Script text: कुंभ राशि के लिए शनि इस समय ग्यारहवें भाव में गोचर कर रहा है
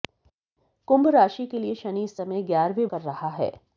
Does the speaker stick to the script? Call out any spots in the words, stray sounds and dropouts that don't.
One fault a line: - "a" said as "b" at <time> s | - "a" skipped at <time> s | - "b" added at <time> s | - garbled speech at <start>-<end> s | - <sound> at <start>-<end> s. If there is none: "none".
- "भाव में गोचर" skipped at 2.9 s